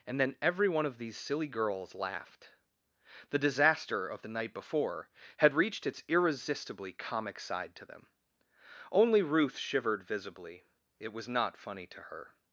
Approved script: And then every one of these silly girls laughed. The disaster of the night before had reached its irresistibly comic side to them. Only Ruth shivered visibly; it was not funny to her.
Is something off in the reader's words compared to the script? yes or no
no